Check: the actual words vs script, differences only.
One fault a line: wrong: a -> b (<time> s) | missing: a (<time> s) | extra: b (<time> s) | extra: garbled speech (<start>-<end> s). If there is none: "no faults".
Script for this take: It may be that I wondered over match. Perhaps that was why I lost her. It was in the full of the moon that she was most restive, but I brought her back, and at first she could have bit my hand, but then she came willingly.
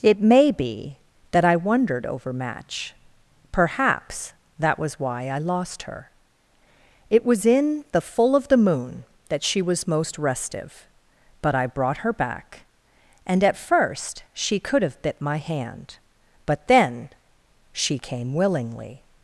no faults